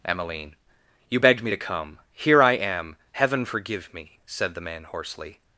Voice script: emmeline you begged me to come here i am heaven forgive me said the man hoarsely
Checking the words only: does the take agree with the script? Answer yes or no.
yes